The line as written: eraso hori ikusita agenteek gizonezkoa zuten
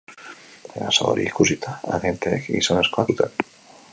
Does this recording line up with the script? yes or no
yes